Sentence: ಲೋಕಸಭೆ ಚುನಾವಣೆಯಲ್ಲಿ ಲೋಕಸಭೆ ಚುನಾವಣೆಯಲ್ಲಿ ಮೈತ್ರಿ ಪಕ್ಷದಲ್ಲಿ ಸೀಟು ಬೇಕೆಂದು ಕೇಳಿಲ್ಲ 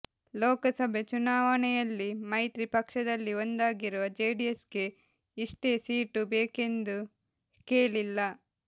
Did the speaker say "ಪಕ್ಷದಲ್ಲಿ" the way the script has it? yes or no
no